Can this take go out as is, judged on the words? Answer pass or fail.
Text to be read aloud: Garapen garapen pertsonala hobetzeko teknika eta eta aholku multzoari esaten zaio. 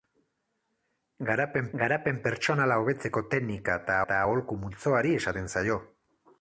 pass